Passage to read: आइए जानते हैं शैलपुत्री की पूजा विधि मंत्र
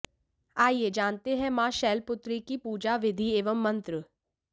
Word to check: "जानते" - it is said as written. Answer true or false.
true